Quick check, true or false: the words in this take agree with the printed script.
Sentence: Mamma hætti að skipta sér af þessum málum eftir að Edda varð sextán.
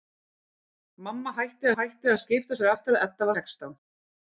false